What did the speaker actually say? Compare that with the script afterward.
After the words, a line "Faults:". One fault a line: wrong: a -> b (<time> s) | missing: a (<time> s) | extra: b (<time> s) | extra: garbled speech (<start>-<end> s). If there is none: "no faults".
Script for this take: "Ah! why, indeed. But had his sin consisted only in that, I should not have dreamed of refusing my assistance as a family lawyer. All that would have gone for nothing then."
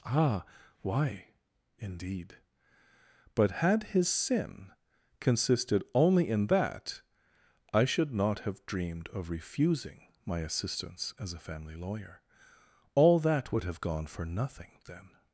"Ah! why, indeed. But had his sin consisted only in that, I should not have dreamed of refusing my assistance as a family lawyer. All that would have gone for nothing then."
Faults:
no faults